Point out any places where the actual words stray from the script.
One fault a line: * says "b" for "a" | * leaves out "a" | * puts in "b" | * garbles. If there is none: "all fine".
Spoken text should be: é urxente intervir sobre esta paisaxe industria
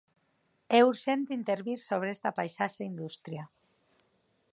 all fine